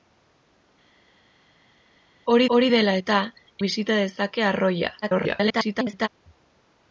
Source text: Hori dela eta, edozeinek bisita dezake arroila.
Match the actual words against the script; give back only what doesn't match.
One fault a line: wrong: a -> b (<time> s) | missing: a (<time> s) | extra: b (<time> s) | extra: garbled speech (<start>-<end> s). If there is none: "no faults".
extra: hori (2.6 s)
missing: edozeinek (3.2 s)
extra: garbled speech (5.0-6.1 s)